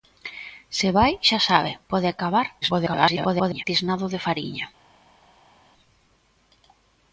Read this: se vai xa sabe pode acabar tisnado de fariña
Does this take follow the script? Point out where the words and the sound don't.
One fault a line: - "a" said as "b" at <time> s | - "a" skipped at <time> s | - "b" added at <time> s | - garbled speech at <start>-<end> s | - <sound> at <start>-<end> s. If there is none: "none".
- garbled speech at 2.6-3.6 s